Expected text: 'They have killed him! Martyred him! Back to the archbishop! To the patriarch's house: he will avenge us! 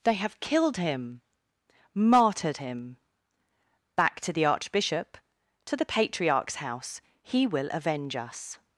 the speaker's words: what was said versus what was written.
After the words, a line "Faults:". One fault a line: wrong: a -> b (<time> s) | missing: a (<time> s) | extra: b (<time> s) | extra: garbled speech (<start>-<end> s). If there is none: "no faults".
'They have killed him! Martyred him! Back to the archbishop! To the patriarch's house: he will avenge us!
Faults:
no faults